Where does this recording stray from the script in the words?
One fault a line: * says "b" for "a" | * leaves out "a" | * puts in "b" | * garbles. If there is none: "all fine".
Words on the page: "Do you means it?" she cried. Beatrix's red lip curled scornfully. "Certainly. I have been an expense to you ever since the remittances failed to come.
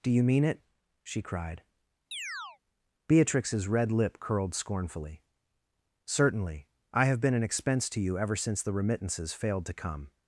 * says "mean" for "means"